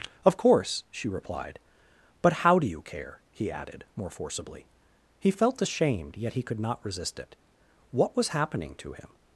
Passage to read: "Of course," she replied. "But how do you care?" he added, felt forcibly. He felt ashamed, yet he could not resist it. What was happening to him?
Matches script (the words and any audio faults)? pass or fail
fail